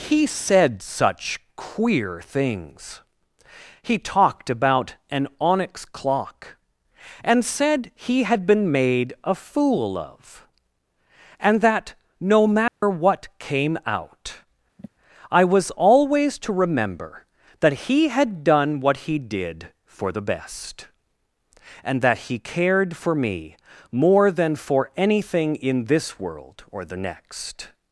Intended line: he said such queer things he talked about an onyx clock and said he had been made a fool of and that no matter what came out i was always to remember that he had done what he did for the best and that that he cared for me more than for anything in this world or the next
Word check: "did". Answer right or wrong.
right